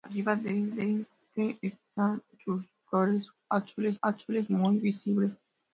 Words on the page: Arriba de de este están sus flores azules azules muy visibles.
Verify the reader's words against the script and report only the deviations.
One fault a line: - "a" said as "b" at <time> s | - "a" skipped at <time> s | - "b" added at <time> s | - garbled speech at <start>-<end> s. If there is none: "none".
none